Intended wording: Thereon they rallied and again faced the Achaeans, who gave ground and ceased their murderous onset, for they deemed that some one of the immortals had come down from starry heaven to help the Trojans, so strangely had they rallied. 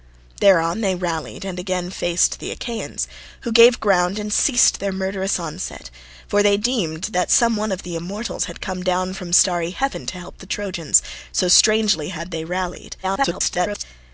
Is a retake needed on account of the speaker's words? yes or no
yes